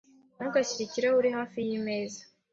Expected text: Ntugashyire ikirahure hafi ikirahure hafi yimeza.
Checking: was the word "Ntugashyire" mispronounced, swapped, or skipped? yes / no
no